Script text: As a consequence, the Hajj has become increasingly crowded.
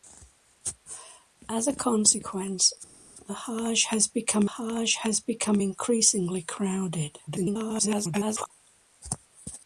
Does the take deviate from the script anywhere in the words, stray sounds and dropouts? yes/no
yes